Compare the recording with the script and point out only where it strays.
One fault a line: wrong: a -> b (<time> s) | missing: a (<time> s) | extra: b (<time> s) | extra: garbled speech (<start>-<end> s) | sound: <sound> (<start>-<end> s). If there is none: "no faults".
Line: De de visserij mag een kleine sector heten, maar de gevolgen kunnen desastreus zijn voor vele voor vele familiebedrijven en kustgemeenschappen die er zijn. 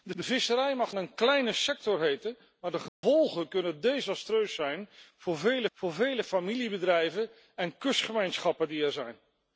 sound: dropout (2.9-3.0 s)